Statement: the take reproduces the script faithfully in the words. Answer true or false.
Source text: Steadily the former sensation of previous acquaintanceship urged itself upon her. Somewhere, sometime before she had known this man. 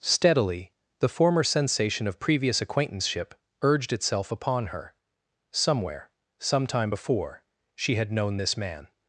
true